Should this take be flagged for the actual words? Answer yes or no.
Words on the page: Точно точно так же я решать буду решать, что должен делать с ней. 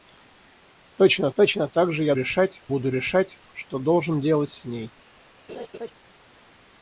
no